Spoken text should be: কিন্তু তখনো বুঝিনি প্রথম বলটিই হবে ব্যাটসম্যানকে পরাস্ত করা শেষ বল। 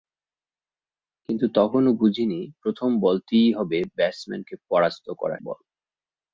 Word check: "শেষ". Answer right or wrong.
wrong